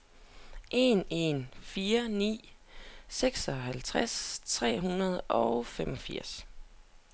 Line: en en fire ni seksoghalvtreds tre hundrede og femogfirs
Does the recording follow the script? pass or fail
pass